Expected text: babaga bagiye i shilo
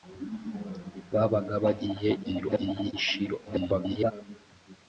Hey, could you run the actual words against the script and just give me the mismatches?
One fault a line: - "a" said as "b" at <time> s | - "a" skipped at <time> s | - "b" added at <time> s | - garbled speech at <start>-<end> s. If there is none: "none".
- garbled speech at 2.2-2.9 s
- garbled speech at 3.4-4.1 s